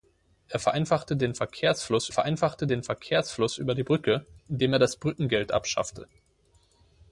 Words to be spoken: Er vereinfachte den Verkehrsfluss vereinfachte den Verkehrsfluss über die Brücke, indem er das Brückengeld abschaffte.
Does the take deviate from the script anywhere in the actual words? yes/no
no